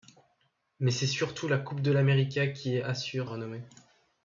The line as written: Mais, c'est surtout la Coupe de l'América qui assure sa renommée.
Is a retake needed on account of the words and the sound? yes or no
yes